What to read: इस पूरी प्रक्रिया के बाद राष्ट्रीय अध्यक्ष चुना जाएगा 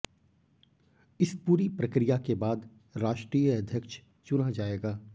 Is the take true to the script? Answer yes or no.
yes